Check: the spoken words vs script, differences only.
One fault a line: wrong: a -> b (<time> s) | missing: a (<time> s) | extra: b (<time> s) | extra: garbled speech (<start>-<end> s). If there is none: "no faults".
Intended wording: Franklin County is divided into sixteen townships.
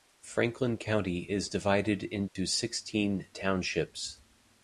no faults